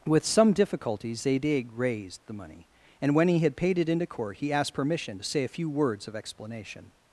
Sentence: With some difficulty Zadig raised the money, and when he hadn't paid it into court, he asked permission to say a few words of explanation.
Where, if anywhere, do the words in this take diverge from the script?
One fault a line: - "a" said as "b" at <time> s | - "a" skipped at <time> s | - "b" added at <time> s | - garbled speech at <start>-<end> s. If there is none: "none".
- "hadn't" said as "had" at 3.4 s